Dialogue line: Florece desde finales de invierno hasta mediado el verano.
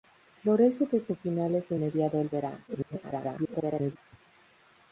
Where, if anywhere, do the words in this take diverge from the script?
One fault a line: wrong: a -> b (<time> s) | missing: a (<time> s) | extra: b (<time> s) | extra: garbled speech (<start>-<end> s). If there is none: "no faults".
missing: invierno hasta (1.8 s)
extra: garbled speech (2.7-4.0 s)